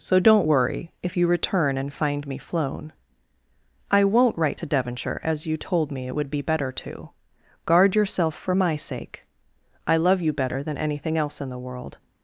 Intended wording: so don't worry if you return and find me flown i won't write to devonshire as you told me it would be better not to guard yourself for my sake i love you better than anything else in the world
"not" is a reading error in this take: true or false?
true